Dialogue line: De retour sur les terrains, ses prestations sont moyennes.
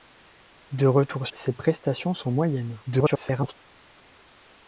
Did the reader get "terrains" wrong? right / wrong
wrong